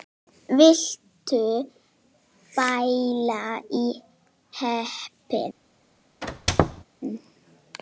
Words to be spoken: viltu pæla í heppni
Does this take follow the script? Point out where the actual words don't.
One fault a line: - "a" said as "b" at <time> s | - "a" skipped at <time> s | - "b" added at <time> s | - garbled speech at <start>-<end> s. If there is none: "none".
none